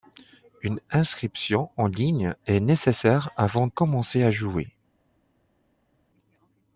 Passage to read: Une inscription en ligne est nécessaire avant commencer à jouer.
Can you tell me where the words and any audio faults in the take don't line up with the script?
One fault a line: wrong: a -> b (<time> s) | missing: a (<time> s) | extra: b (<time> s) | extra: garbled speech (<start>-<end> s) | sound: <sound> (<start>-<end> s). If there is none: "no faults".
no faults